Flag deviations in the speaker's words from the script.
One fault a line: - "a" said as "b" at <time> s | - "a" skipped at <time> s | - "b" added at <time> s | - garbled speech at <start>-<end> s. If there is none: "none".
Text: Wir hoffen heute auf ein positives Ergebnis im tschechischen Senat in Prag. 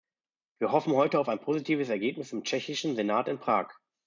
none